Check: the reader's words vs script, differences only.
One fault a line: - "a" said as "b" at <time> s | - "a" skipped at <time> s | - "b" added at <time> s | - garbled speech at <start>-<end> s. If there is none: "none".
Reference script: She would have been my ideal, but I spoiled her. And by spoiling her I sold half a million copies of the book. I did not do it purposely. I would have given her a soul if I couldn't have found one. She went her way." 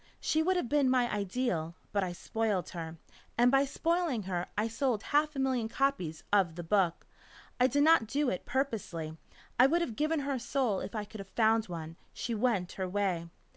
- "couldn't" said as "could" at 11.0 s